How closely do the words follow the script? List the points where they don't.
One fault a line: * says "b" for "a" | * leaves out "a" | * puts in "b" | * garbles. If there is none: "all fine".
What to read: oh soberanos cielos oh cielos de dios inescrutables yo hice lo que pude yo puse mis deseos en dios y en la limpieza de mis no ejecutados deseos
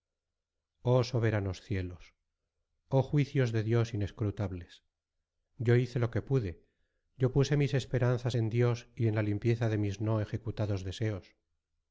* says "juicios" for "cielos"
* says "esperanzas" for "deseos"